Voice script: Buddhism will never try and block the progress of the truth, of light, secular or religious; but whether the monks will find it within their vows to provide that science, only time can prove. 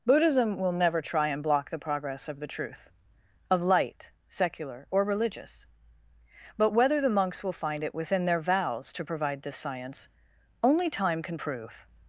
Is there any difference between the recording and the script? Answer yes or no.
yes